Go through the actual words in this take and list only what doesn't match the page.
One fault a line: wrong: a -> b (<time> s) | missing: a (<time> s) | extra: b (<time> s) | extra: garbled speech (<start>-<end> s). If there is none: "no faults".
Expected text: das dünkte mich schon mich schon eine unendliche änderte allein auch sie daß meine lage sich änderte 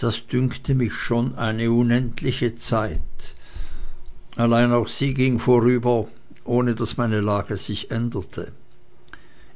missing: mich schon (1.4 s)
wrong: änderte -> zeit (2.5 s)
extra: ging vorüber ohne (5.1 s)